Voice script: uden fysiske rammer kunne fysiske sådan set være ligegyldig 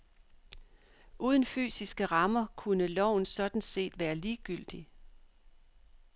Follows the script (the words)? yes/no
no